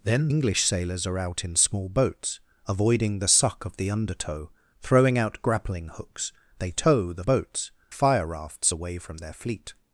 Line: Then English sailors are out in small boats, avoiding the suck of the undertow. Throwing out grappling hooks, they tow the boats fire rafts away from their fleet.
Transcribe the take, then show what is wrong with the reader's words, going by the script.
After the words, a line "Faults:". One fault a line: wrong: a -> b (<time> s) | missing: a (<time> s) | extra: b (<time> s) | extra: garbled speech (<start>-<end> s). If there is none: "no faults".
Then English sailors are out in small boats, avoiding the suck of the undertow. Throwing out grappling hooks, they tow the boats fire rafts away from their fleet.
Faults:
no faults